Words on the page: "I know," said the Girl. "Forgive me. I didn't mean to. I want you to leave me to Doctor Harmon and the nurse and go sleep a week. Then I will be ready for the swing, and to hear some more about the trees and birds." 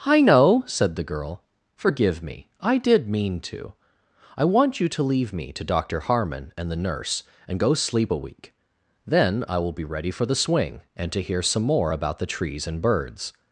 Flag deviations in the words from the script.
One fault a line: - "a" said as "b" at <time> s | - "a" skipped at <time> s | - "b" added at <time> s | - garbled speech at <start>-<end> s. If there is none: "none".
- "didn't" said as "did" at 2.8 s